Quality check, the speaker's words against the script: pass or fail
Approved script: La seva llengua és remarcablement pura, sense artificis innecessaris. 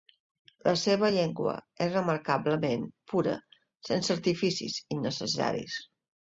pass